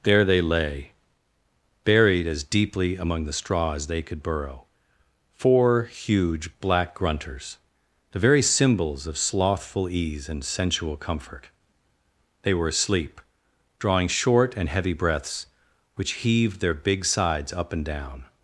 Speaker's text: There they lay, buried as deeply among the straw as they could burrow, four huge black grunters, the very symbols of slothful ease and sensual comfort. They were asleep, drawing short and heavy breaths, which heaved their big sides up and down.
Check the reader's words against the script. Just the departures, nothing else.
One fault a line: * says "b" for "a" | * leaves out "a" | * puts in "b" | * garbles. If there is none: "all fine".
all fine